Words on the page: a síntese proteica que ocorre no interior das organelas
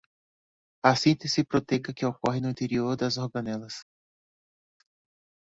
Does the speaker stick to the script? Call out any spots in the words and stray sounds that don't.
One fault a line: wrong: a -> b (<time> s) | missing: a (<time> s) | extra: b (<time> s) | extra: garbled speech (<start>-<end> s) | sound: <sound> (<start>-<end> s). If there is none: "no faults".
no faults